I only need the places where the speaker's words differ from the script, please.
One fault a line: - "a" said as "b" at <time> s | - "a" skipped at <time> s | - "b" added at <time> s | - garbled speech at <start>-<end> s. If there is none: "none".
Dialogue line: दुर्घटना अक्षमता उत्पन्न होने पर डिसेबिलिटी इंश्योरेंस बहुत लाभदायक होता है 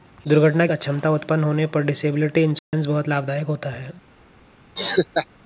none